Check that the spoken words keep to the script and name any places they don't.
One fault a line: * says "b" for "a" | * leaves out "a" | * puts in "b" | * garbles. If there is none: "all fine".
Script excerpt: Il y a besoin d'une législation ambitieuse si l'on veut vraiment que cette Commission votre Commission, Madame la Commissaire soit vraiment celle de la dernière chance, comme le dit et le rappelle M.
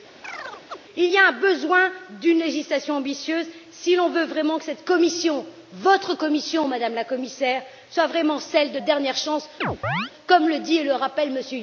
* leaves out "la"